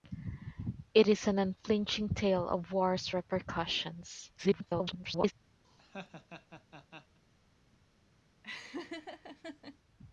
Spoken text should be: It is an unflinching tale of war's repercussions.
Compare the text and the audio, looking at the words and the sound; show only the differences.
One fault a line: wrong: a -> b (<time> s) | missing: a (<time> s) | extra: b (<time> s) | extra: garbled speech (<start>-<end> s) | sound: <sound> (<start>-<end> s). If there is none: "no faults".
extra: garbled speech (4.4-5.3 s)
sound: laugh (5.6-7.2 s)
sound: laugh (8.4-9.8 s)